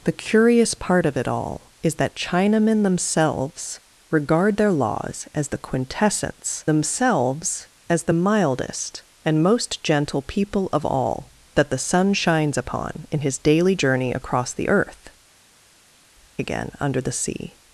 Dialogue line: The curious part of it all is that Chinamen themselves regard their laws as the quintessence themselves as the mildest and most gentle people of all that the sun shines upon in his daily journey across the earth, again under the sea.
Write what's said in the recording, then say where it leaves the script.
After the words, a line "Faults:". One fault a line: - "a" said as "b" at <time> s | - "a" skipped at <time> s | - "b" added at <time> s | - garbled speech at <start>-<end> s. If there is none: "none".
The curious part of it all is that Chinamen themselves regard their laws as the quintessence themselves as the mildest and most gentle people of all that the sun shines upon in his daily journey across the earth, again under the sea.
Faults:
none